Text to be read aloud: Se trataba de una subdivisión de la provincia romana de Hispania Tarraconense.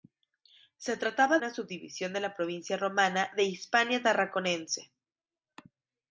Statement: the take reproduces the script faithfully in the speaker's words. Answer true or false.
false